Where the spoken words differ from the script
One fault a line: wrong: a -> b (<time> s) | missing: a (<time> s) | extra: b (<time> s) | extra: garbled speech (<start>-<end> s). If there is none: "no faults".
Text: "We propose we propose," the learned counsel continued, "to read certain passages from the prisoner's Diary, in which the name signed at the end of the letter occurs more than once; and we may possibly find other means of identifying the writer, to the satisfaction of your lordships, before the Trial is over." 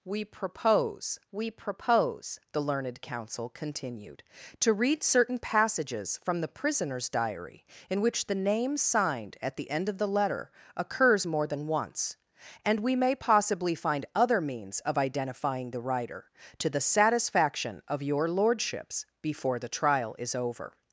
no faults